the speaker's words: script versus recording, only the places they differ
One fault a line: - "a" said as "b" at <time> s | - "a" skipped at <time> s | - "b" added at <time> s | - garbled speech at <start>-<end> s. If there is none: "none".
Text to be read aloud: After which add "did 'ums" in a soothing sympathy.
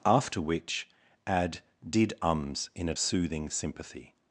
none